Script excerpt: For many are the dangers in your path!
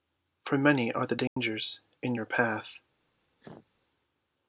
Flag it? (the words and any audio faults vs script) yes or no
yes